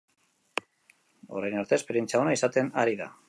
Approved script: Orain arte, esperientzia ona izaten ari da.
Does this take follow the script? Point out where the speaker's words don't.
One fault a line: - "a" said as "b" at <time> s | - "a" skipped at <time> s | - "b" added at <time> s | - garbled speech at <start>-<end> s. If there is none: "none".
none